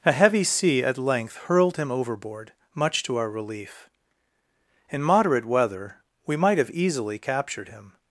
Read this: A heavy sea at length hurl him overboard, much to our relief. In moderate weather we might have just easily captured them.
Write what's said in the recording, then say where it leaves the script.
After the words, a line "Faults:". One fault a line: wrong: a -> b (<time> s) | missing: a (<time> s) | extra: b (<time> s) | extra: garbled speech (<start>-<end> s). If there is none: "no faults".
A heavy sea at length hurled him overboard, much to our relief. In moderate weather we might have easily captured him.
Faults:
wrong: hurl -> hurled (1.4 s)
missing: just (6.7 s)
wrong: them -> him (7.7 s)